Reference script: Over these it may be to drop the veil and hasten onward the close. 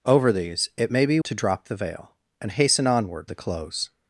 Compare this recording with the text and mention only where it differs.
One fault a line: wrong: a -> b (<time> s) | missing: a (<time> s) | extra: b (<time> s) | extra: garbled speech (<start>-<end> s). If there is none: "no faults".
no faults